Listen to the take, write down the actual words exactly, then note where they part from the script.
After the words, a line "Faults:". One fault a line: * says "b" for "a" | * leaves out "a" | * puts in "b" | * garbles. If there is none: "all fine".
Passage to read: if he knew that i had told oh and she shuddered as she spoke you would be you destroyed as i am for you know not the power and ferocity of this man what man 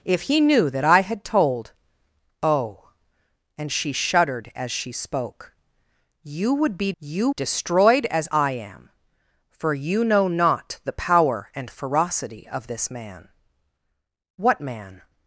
if he knew that i had told oh and she shuddered as she spoke you would be you destroyed as i am for you know not the power and ferocity of this man what man
Faults:
all fine